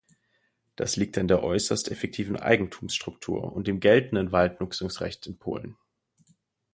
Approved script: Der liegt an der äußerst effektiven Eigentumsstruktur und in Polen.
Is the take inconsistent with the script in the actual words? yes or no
yes